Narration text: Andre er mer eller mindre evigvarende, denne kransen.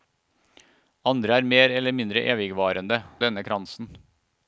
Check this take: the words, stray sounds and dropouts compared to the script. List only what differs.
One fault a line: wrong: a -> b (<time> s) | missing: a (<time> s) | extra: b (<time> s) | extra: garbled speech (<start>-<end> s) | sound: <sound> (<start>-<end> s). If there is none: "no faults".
no faults